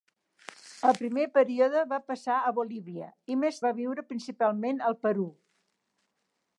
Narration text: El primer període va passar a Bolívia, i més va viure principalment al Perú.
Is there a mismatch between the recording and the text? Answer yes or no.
no